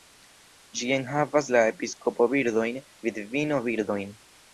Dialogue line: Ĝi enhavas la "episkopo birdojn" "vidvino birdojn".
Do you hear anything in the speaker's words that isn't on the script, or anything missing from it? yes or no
no